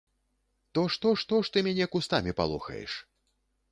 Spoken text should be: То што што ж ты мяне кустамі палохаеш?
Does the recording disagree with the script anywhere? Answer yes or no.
no